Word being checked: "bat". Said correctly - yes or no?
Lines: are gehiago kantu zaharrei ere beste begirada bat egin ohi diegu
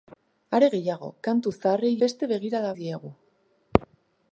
no